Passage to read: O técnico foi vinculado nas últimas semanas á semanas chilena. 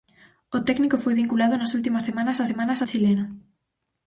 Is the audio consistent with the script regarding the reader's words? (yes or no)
yes